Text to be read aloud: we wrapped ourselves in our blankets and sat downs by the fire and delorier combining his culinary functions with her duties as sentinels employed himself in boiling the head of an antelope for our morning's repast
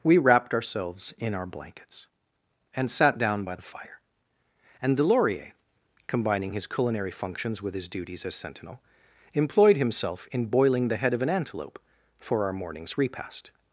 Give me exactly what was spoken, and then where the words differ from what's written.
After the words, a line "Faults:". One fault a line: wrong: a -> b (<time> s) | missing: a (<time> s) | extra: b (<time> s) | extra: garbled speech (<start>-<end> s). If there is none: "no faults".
we wrapped ourselves in our blankets and sat down by the fire and delorier combining his culinary functions with his duties as sentinel employed himself in boiling the head of an antelope for our morning's repast
Faults:
wrong: downs -> down (3.2 s)
wrong: her -> his (7.7 s)
wrong: sentinels -> sentinel (8.4 s)